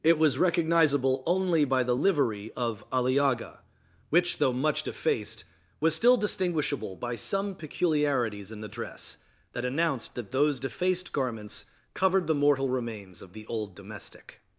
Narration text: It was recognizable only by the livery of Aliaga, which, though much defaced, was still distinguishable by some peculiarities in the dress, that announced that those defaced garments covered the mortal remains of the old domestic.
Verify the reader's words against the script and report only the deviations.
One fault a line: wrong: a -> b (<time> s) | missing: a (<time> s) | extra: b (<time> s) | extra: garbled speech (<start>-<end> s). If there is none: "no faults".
no faults